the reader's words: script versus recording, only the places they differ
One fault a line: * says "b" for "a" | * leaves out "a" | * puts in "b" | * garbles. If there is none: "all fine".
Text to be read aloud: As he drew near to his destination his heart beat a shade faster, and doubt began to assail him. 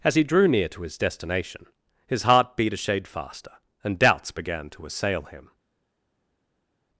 * says "doubts" for "doubt"